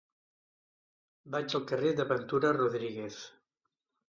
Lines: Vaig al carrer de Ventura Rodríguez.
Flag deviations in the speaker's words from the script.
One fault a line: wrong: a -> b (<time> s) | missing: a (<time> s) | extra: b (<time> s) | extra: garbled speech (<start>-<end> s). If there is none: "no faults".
no faults